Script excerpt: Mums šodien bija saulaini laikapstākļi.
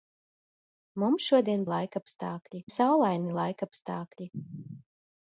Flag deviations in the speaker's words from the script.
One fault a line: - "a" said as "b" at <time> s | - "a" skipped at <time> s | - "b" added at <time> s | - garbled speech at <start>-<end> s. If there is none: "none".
- "bija" said as "laikapstākļi" at 1.7 s